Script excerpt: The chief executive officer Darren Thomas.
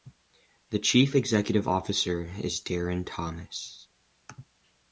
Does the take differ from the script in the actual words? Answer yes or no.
yes